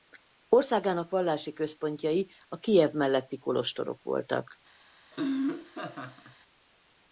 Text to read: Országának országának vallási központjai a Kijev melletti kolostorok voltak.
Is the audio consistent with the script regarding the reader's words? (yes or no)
no